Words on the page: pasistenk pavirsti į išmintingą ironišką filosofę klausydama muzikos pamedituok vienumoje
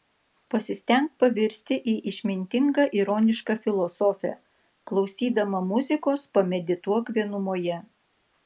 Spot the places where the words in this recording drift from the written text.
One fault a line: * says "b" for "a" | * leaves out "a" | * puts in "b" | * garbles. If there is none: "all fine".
all fine